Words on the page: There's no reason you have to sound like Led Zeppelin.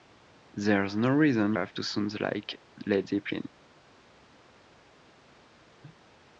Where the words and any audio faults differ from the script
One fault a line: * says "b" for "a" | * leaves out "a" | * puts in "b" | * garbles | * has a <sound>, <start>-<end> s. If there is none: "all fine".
* leaves out "you"